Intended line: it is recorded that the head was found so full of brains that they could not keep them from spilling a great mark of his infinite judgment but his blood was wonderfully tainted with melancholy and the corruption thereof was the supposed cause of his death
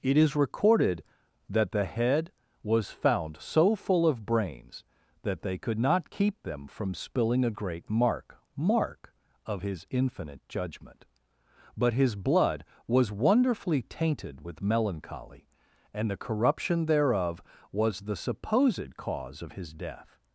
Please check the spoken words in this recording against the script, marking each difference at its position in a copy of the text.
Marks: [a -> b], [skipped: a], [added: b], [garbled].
it is recorded that the head was found so full of brains that they could not keep them from spilling a great mark [added: mark] of his infinite judgment but his blood was wonderfully tainted with melancholy and the corruption thereof was the supposed cause of his death